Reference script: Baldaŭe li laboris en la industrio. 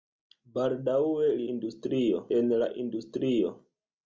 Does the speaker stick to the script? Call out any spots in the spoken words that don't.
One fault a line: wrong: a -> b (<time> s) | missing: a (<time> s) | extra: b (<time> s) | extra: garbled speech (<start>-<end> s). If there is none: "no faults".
wrong: laboris -> industrio (1.5 s)